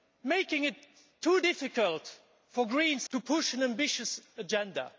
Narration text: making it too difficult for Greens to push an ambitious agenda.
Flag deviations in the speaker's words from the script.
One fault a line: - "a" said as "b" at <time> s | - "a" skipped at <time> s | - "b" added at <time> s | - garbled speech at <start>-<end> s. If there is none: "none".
none